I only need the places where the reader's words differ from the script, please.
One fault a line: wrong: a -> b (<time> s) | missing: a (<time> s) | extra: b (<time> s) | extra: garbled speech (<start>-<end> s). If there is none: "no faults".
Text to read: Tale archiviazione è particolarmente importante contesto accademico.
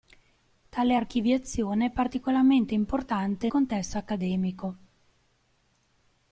no faults